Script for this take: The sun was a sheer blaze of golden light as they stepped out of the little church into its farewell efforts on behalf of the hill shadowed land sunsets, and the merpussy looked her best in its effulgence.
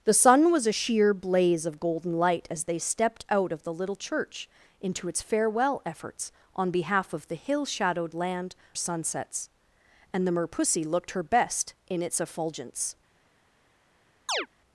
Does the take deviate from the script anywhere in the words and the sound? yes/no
yes